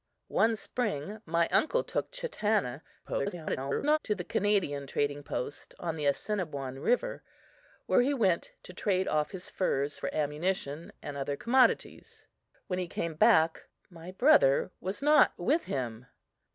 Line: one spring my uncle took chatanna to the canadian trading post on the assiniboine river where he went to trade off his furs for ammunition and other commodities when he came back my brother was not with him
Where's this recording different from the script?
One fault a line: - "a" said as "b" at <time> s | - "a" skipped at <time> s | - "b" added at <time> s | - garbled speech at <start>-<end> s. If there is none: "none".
- garbled speech at 3.0-4.0 s